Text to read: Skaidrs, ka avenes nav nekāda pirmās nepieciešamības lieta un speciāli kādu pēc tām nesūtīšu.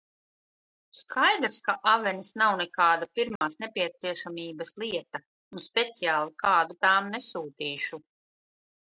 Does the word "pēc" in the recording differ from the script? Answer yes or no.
yes